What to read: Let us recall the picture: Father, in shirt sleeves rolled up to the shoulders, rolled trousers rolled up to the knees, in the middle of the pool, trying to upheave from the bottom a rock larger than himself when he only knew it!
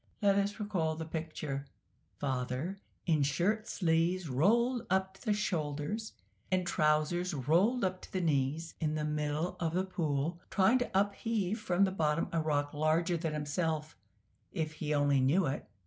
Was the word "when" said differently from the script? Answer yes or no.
yes